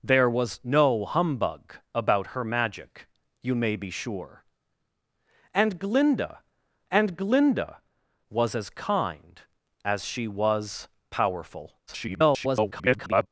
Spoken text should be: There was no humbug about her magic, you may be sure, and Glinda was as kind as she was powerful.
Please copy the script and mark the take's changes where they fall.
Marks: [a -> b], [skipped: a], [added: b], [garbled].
There was no humbug about her magic, you may be sure, and Glinda [added: and Glinda] was as kind as she was powerful. [garbled]